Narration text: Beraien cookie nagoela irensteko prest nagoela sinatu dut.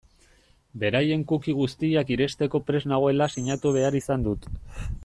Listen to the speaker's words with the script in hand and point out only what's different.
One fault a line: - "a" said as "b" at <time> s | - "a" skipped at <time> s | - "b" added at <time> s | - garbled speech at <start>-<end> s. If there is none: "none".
- "nagoela" said as "guztiak" at 1.6 s
- "behar izan" added at 3.8 s